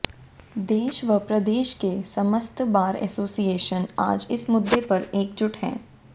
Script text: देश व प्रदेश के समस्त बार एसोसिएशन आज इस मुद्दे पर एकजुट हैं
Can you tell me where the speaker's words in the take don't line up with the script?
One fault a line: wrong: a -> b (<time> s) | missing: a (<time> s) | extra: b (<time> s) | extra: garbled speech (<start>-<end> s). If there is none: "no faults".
no faults